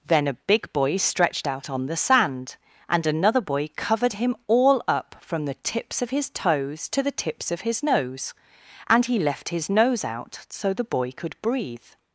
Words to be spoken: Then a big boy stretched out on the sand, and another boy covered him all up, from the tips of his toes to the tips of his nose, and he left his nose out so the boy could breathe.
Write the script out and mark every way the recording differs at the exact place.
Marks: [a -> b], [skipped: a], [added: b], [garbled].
Then a big boy stretched out on the sand, and another boy covered him all up, from the tips of his toes to the tips of his nose, and he left his nose out so the boy could breathe.